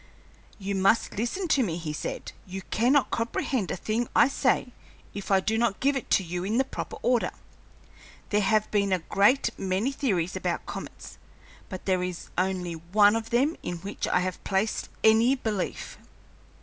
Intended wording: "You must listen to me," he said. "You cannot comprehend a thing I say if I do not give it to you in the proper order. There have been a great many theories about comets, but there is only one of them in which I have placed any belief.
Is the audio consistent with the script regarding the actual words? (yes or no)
yes